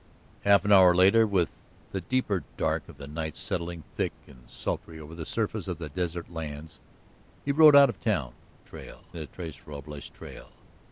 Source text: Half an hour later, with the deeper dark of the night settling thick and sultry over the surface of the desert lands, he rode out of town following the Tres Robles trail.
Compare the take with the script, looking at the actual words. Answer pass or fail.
fail